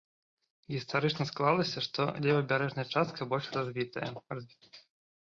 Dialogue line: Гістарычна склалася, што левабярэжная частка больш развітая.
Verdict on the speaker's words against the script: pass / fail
pass